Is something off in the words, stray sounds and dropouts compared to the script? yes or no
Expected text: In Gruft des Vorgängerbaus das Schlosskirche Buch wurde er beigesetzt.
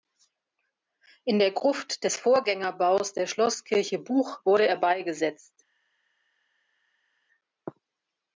yes